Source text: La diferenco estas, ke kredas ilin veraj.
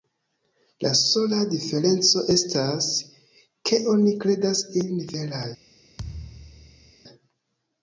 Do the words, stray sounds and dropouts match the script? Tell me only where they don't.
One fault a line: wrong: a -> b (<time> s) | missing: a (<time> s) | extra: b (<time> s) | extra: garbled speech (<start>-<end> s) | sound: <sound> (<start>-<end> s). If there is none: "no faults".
extra: sola (1.0 s)
extra: oni (4.0 s)
sound: thud (6.0-6.9 s)